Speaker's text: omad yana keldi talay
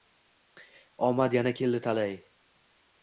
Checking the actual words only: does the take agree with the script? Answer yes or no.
yes